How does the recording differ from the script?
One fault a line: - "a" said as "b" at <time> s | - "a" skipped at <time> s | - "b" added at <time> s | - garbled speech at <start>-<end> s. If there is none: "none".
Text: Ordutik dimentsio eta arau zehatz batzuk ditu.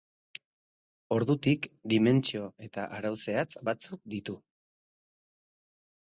none